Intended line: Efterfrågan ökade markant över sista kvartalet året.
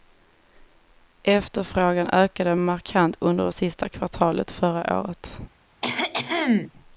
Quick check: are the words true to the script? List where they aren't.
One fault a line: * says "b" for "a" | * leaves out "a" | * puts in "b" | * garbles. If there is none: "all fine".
* says "under" for "över"
* puts in "förra"